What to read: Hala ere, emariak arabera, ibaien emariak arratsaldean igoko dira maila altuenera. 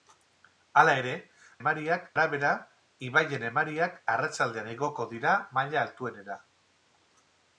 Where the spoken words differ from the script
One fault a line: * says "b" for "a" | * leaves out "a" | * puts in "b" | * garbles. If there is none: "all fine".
all fine